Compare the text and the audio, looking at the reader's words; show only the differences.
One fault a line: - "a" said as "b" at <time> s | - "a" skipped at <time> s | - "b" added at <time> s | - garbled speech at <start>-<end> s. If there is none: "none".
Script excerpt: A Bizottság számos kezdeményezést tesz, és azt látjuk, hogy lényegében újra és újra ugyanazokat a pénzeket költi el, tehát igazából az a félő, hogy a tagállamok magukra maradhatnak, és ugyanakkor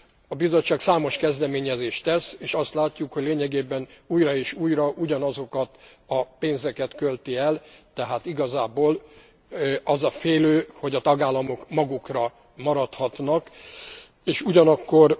none